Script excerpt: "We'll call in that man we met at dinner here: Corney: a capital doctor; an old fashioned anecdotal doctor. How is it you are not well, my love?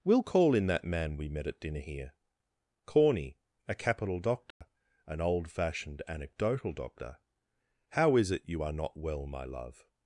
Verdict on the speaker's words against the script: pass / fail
pass